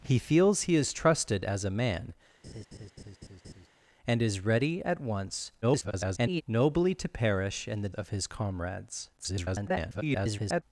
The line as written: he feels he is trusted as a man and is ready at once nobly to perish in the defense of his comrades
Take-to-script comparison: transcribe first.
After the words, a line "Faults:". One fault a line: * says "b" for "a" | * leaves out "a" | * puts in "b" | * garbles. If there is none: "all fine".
he feels he is trusted as a man and is ready at once [garbled] nobly to perish in the of his comrades [garbled]
Faults:
* garbles
* leaves out "defense"
* garbles